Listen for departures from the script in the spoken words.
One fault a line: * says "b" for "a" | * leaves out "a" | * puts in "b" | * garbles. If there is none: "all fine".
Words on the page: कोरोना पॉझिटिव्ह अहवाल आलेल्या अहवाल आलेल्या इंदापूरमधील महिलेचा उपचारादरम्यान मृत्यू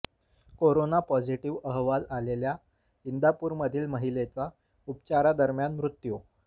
* leaves out "अहवाल आलेल्या"